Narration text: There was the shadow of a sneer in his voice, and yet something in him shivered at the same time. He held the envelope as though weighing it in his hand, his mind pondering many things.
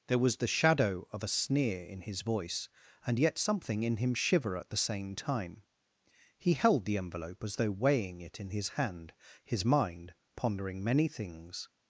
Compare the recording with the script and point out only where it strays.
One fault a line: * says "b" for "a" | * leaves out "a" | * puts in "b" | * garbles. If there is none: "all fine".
* says "shiver" for "shivered"